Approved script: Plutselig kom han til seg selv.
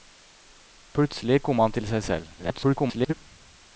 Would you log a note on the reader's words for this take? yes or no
yes